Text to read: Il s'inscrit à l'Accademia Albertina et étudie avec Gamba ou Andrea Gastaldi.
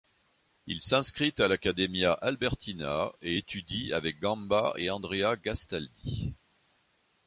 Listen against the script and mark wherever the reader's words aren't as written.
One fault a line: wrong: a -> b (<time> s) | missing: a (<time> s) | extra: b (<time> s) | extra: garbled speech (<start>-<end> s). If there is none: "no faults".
wrong: ou -> et (4.8 s)